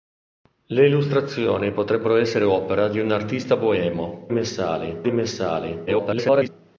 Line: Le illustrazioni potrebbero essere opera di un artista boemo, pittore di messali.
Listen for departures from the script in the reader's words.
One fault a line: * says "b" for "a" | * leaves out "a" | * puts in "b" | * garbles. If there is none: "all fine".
* says "messali" for "pittore"
* garbles